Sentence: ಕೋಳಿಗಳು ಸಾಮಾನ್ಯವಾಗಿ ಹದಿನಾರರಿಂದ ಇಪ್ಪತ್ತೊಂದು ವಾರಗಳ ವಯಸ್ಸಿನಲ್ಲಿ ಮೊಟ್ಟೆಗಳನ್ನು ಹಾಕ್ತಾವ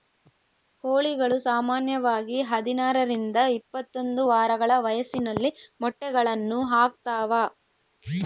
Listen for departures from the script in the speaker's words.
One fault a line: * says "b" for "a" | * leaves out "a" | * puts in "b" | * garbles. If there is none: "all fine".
all fine